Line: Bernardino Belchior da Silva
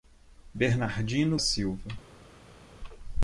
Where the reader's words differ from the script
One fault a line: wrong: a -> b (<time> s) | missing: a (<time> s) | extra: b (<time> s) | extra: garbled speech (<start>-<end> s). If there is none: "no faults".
missing: Belchior da (1.4 s)